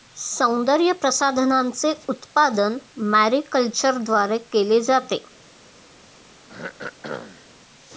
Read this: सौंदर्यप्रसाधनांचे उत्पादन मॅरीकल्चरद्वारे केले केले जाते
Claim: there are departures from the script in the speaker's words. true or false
true